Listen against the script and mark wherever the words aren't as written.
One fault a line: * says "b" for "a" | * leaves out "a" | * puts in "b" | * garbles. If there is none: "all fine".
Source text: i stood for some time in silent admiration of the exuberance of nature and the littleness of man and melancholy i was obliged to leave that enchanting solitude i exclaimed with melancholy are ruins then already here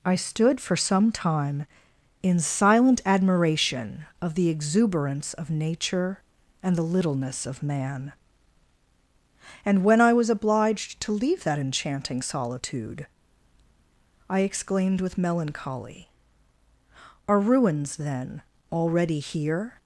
* says "when" for "melancholy"